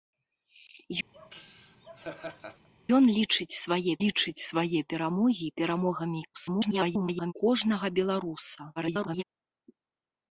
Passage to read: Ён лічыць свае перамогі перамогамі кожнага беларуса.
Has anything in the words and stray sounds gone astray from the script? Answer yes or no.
yes